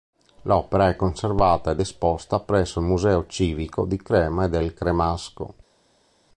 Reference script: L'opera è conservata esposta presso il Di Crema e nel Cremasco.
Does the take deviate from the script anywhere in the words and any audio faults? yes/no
yes